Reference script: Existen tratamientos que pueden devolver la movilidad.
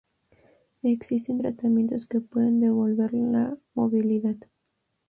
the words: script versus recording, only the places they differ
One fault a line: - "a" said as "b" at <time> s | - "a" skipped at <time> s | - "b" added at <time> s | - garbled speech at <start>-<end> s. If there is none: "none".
none